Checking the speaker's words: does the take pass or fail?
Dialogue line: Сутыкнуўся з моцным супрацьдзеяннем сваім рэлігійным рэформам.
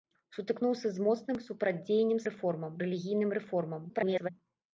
fail